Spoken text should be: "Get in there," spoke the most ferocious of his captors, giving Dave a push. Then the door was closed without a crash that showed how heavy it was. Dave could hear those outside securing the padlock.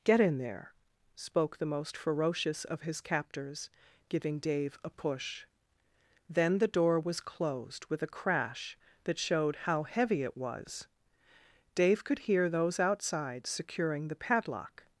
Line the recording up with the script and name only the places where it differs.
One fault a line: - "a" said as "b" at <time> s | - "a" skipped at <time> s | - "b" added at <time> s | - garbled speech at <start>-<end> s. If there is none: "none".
- "without" said as "with" at 7.9 s